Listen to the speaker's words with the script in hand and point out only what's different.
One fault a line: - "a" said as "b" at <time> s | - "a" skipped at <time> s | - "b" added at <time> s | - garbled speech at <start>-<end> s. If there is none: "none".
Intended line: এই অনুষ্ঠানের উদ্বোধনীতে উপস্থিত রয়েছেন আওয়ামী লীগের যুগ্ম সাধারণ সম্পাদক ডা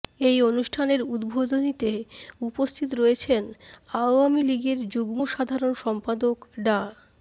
none